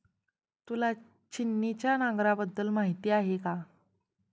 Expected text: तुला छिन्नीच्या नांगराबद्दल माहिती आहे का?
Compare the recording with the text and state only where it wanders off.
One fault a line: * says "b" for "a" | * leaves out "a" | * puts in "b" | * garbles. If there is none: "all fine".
all fine